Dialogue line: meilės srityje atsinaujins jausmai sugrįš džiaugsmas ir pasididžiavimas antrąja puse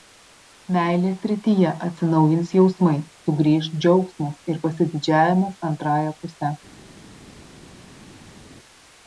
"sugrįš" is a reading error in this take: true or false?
false